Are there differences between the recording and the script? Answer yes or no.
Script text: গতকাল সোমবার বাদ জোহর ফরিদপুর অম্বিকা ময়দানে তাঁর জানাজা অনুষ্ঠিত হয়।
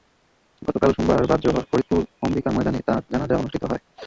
no